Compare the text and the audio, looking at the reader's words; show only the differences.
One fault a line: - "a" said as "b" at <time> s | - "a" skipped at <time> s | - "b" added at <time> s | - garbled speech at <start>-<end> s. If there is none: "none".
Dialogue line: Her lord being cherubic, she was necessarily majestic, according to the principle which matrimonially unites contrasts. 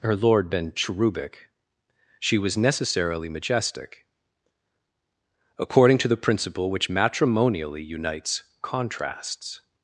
- "being" said as "been" at 0.5 s